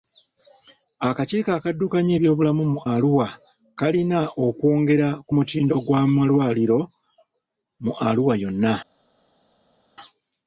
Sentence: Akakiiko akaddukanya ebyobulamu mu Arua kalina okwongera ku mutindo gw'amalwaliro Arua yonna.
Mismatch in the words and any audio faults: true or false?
true